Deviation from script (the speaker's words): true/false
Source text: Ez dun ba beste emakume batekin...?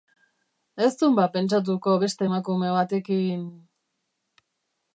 true